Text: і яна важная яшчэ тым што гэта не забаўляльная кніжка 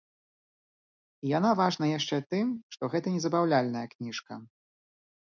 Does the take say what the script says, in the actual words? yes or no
yes